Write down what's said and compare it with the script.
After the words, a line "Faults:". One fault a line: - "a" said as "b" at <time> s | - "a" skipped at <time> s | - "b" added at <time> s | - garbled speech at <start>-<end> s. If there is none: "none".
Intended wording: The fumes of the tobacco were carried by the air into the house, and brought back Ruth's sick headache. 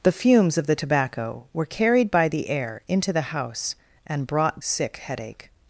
The fumes of the tobacco were carried by the air into the house, and brought sick headache.
Faults:
- "back Ruth's" skipped at 4.6 s